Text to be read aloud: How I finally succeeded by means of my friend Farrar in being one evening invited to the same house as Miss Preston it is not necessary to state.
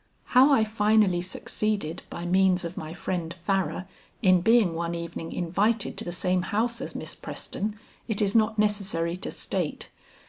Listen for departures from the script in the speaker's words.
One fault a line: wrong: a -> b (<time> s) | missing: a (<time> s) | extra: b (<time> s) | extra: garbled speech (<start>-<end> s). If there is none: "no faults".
no faults